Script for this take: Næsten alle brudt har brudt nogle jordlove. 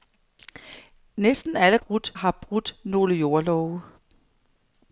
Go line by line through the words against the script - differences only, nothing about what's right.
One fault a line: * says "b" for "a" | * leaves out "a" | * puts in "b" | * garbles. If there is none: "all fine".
all fine